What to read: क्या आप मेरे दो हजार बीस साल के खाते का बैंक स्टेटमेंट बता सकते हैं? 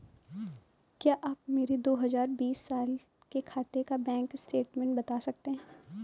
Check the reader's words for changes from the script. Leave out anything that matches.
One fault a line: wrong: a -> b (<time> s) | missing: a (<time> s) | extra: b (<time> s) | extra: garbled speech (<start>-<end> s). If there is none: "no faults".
no faults